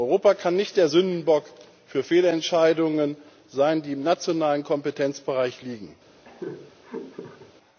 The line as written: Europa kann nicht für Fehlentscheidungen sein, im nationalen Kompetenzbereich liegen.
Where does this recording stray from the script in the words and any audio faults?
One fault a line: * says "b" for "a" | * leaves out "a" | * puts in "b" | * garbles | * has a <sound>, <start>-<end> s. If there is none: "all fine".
* puts in "der Sündenbock"
* puts in "die"
* has a laugh, 6.2-7.5 s